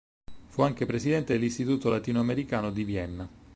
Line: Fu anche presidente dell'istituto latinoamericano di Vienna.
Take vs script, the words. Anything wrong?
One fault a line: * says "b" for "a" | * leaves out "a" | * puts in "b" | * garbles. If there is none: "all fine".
all fine